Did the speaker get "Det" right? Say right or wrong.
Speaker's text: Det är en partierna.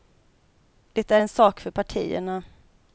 right